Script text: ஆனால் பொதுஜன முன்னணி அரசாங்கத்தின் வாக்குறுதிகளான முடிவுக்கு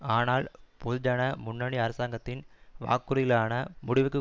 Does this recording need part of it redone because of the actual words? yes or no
no